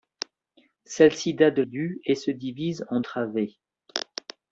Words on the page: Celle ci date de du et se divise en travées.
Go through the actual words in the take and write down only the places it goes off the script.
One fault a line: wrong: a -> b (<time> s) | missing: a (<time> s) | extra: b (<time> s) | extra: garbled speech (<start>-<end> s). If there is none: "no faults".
no faults